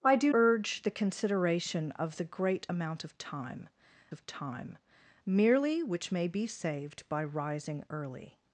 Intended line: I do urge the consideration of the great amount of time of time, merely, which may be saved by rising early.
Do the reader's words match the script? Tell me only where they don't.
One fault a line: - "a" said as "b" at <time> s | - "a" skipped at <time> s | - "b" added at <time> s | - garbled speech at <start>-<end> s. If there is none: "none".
none